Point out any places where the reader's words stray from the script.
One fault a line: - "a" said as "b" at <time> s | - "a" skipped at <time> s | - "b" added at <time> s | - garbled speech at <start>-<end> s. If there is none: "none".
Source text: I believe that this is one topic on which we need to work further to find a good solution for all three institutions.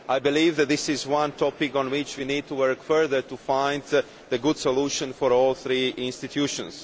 none